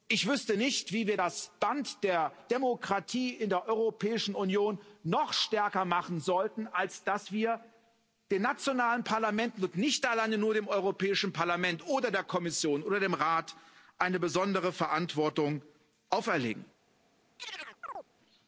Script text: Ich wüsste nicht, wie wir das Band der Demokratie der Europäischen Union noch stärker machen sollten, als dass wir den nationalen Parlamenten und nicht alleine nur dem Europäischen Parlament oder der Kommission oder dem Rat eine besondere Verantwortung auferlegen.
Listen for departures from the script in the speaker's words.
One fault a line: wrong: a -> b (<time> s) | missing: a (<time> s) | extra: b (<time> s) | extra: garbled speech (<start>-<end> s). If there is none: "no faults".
extra: in (3.3 s)